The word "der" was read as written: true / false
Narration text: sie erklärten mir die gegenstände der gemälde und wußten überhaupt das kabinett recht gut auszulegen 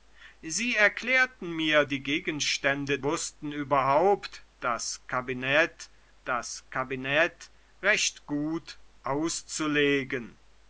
false